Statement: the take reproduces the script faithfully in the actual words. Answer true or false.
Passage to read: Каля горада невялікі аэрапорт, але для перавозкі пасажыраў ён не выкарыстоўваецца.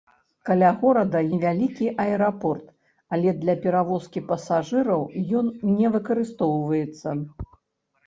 true